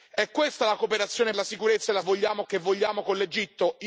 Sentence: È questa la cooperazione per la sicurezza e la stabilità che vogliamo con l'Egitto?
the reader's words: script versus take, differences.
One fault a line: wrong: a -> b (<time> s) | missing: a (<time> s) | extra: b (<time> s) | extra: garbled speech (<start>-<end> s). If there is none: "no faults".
missing: per (1.3 s)
wrong: stabilità -> vogliamo (2.0 s)